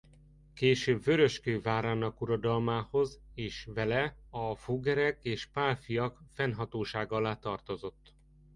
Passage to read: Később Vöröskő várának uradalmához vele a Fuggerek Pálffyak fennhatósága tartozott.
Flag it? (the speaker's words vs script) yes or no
yes